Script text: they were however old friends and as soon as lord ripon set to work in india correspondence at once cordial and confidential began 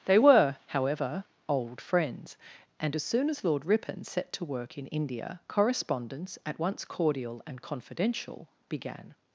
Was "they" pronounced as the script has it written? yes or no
yes